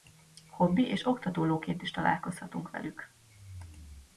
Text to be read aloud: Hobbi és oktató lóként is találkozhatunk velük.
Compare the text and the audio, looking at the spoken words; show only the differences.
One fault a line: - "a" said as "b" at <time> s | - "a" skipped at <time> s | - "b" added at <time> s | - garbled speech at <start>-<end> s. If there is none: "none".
none